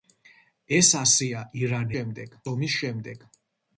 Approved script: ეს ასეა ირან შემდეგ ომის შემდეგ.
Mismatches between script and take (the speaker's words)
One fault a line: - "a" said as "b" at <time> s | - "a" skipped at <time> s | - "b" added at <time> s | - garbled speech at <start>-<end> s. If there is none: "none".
none